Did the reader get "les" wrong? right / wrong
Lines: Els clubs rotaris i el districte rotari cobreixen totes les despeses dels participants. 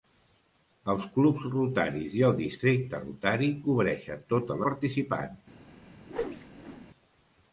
wrong